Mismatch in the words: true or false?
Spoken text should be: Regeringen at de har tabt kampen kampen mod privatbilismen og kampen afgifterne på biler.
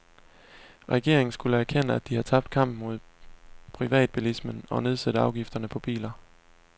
true